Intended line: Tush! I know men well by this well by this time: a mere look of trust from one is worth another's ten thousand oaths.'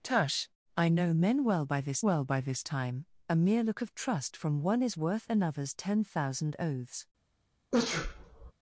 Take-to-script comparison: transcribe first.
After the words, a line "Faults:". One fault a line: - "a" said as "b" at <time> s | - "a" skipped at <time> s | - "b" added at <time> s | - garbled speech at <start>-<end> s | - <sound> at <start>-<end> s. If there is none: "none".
Tush! I know men well by this well by this time: a mere look of trust from one is worth another's ten thousand oaths.'
Faults:
- sneeze at 7.7-8.5 s